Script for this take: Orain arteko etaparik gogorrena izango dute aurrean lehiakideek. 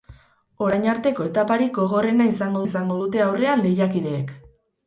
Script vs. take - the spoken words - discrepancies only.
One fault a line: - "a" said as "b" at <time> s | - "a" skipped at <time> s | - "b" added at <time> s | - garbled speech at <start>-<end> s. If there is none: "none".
- "izango" added at 2.6 s